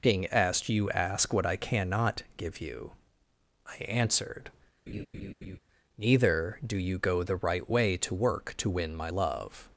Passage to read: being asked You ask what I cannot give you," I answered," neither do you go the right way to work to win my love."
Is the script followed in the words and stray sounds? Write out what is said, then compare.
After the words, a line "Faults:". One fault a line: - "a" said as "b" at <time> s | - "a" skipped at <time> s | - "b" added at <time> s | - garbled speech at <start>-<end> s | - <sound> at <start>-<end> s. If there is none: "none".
being asked You ask what I cannot give you," I answered," neither do you go the right way to work to win my love."
Faults:
- laugh at 4.9-5.6 s